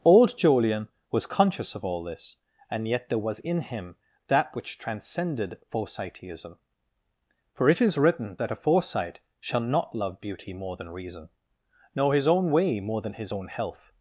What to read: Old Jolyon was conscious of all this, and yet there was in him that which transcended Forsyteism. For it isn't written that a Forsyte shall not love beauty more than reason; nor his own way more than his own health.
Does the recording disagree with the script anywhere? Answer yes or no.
yes